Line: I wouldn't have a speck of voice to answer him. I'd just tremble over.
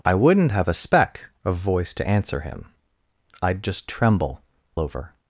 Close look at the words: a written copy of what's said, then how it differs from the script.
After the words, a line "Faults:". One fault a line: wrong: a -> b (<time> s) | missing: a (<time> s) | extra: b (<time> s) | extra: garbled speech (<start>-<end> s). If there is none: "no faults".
I wouldn't have a speck of voice to answer him. I'd just tremble over.
Faults:
no faults